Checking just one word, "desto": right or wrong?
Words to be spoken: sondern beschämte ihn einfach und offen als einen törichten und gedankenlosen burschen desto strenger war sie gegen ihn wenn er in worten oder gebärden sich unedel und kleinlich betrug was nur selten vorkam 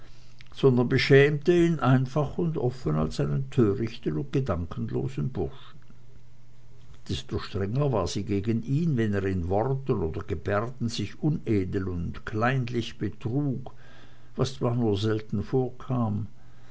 right